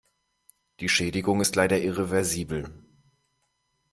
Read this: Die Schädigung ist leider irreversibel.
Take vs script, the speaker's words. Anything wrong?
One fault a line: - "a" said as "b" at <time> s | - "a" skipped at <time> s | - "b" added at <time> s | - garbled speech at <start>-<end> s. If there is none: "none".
none